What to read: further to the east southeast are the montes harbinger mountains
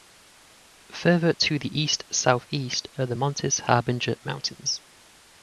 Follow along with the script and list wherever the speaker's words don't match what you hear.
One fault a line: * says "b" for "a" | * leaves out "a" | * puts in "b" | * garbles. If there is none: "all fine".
all fine